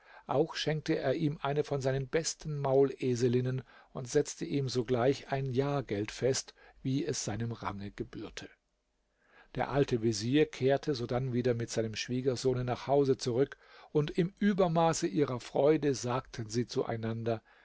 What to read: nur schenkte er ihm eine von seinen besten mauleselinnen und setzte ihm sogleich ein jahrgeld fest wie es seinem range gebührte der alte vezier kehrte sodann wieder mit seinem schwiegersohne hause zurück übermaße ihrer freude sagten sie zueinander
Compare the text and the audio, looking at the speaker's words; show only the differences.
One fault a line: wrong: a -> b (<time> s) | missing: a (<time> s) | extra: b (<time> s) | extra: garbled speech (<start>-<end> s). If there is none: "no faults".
wrong: nur -> auch (0.2 s)
extra: nach (12.7 s)
extra: und im (13.9 s)